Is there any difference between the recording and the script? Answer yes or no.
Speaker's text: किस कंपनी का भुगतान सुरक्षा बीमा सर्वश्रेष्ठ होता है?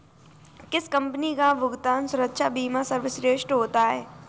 no